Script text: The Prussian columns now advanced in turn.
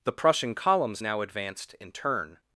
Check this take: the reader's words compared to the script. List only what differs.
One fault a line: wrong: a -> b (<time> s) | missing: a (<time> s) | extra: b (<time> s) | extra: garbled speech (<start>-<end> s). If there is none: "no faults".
no faults